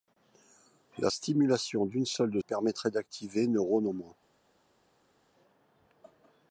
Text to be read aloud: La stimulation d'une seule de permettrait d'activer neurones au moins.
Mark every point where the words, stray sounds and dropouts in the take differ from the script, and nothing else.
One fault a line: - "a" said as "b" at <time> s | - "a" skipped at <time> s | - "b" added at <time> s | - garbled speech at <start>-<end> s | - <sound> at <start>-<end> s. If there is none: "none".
none